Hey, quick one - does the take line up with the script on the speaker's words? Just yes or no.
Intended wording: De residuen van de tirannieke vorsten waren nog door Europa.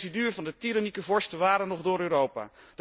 yes